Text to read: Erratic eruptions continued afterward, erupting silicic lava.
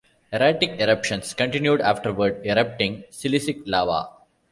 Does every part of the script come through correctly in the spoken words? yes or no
yes